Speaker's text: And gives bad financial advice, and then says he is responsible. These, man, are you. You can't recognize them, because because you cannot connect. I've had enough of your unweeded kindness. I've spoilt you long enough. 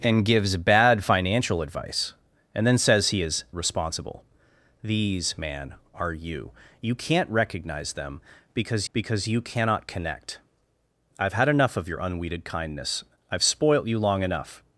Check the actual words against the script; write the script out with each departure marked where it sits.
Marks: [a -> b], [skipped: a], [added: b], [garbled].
And gives bad financial advice, and then says he is responsible. These, man, are you. You can't recognize them, because because you cannot connect. I've had enough of your unweeded kindness. I've spoilt you long enough.